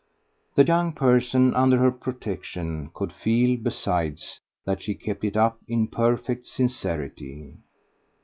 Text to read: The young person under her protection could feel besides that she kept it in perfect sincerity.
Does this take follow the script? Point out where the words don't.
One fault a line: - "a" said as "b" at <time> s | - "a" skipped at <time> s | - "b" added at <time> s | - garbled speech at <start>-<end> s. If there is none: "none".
- "up" added at 5.4 s